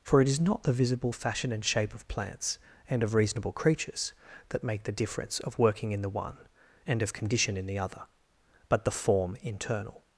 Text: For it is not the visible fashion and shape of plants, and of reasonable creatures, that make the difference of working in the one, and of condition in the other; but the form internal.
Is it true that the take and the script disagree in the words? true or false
false